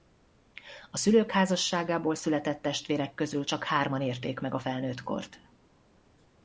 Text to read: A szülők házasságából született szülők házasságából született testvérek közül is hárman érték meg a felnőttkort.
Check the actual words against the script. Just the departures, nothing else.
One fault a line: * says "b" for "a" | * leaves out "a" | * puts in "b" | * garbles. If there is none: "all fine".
* leaves out "szülők házasságából született"
* says "csak" for "is"